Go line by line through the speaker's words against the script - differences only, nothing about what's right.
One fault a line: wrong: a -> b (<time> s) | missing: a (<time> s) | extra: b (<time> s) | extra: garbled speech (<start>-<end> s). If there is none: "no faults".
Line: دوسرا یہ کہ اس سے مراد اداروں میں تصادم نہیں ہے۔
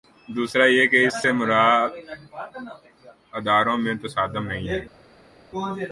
no faults